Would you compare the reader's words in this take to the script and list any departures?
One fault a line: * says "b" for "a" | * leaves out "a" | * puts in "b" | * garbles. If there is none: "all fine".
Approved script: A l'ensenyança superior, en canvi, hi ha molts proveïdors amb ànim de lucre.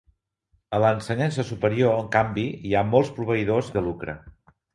* leaves out "amb ànim"